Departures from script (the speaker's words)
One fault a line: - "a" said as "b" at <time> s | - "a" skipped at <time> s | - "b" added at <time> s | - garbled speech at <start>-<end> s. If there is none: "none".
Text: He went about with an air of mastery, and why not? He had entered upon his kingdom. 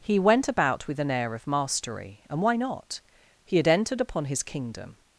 none